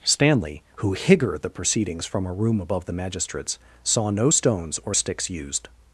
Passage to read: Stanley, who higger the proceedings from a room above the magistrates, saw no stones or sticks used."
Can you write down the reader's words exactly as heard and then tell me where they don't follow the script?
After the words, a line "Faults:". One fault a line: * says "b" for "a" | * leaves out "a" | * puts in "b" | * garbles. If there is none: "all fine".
Stanley, who higger the proceedings from a room above the magistrates, saw no stones or sticks used."
Faults:
all fine